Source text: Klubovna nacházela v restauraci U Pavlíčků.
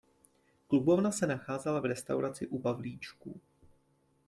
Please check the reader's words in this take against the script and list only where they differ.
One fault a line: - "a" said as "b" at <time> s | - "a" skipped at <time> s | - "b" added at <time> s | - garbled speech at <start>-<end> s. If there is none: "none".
- "se" added at 1.1 s